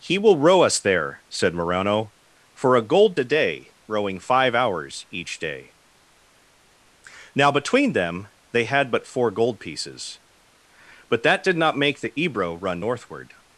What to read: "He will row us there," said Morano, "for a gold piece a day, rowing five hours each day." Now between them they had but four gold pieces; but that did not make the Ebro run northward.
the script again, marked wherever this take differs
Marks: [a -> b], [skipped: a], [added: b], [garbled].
"He will row us there," said Morano, "for a gold [skipped: piece] a day, rowing five hours each day." Now between them they had but four gold pieces; but that did not make the Ebro run northward.